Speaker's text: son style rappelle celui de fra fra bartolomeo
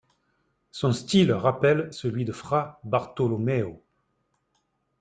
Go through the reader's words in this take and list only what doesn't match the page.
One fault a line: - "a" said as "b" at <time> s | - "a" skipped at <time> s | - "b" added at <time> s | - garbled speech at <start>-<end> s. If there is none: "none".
- "fra" skipped at 2.8 s